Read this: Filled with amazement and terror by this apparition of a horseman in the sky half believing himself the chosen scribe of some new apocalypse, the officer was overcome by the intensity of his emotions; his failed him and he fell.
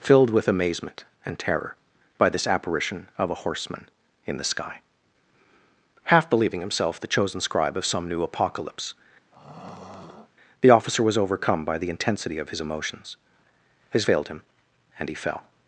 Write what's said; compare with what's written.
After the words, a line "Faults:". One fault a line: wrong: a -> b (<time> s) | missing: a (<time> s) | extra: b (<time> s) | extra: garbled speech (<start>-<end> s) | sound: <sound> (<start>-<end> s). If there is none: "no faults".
Filled with amazement and terror by this apparition of a horseman in the sky half believing himself the chosen scribe of some new apocalypse, the officer was overcome by the intensity of his emotions; his failed him and he fell.
Faults:
sound: throat clearing (9.3-10.3 s)